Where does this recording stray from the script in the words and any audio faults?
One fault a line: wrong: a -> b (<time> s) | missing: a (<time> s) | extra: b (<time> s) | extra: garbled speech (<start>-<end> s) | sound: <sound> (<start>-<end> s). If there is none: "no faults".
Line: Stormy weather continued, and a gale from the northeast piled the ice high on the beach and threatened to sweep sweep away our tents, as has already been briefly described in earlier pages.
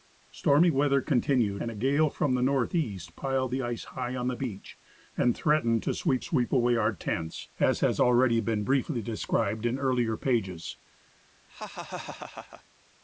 sound: laugh (11.5-12.6 s)